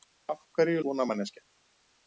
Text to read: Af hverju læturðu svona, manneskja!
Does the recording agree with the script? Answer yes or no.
no